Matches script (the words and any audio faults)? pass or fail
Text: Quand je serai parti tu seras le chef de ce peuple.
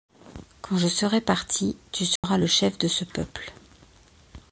fail